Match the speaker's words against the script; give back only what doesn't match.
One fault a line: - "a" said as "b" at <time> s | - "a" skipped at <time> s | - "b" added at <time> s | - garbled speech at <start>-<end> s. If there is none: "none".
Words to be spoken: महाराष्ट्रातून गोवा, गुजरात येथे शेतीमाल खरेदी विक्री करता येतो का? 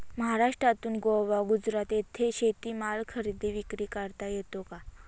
none